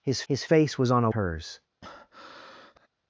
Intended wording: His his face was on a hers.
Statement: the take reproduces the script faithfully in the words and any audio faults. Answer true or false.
false